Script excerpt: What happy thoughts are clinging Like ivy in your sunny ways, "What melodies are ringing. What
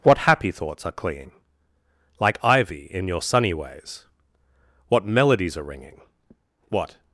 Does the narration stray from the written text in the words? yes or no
no